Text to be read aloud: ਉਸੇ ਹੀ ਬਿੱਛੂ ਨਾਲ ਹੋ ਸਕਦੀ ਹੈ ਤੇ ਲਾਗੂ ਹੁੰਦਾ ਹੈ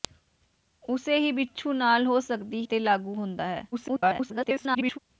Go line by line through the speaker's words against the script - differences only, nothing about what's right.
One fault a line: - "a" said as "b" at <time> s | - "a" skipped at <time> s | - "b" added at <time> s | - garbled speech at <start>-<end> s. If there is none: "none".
- "ਹੈ" skipped at 2.6 s
- garbled speech at 3.7-5.0 s